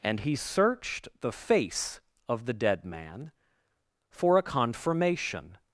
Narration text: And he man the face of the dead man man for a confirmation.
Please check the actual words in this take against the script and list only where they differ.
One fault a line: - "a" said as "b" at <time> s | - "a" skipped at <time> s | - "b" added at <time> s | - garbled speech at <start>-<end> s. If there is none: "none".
- "man" said as "searched" at 0.4 s
- "man" skipped at 3.3 s